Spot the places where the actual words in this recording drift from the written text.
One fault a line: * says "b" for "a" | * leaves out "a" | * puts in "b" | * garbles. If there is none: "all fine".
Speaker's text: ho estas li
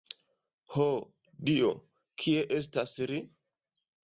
* puts in "dio kie"